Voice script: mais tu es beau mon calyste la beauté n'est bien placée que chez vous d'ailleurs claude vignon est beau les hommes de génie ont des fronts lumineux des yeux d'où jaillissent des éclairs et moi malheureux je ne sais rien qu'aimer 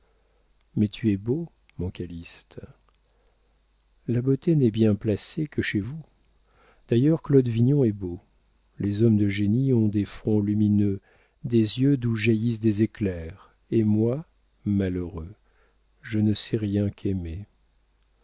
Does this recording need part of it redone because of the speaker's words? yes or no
no